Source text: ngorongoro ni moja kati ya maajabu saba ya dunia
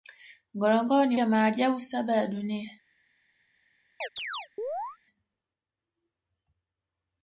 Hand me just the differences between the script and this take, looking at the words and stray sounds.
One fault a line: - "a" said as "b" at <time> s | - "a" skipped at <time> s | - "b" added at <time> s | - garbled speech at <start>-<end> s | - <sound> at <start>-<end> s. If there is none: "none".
- "moja kati" skipped at 1.2 s
- chirp at 4.0-5.0 s